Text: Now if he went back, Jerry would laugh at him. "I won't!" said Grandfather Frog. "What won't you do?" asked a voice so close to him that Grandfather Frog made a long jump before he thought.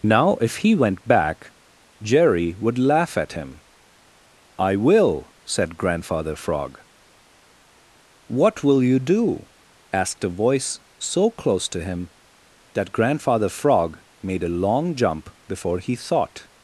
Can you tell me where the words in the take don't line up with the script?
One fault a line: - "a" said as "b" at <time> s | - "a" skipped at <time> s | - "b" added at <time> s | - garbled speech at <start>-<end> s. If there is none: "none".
- "won't" said as "will" at 4.8 s
- "won't" said as "will" at 8.6 s